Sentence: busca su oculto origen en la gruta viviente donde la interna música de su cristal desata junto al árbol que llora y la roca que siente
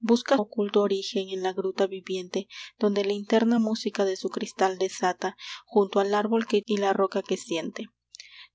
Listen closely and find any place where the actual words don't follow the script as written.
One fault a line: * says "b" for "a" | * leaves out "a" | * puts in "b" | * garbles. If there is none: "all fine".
* leaves out "su"
* leaves out "llora"